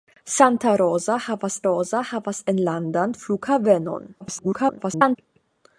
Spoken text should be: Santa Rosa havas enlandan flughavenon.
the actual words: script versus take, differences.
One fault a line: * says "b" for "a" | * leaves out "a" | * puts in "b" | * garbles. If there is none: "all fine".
* puts in "Rosa havas"
* garbles